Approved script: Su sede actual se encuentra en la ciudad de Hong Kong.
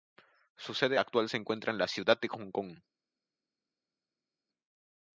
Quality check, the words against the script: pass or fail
pass